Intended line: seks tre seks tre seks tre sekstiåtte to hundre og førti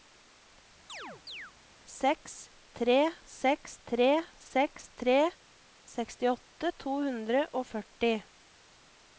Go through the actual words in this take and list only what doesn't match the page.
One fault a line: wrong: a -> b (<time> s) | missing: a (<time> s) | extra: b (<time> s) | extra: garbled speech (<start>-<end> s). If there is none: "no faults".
no faults